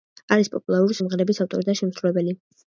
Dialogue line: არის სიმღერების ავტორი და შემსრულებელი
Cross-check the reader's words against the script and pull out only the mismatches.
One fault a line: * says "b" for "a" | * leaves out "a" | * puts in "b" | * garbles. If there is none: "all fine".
* puts in "პოპულარული"